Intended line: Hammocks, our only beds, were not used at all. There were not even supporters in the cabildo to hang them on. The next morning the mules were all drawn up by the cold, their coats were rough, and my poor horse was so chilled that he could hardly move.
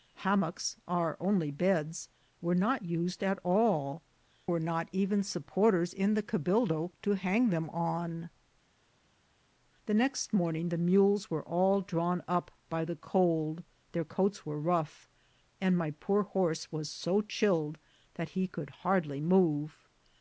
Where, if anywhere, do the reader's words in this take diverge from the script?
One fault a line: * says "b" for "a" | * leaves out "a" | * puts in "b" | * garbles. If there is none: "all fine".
* leaves out "There"